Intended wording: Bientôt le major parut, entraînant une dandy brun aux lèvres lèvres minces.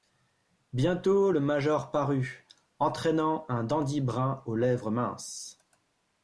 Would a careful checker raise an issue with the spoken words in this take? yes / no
yes